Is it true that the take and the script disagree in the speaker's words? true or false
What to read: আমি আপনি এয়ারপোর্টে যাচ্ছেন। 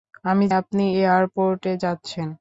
false